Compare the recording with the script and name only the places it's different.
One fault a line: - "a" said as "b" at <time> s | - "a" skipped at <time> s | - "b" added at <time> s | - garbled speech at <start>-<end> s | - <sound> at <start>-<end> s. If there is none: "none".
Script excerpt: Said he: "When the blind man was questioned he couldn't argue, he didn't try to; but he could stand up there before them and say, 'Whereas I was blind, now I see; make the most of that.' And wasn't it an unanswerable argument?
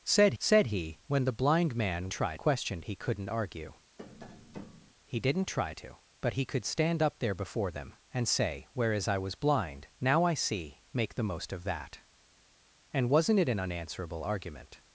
- "said" added at 0.4 s
- "was" said as "try" at 2.1 s
- tap at 4.0-4.9 s